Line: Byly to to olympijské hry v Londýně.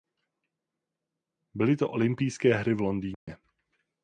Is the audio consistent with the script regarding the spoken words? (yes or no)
no